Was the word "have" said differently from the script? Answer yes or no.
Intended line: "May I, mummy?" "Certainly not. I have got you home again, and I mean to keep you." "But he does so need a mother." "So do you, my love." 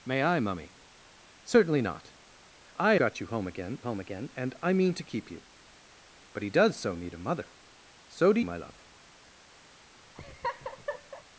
yes